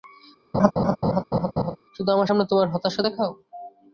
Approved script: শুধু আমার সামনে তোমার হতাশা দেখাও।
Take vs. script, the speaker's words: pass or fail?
pass